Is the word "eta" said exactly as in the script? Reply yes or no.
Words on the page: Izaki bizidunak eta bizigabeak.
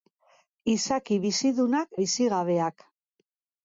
no